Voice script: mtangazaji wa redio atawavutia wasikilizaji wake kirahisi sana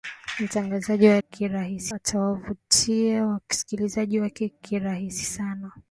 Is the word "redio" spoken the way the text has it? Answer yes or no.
no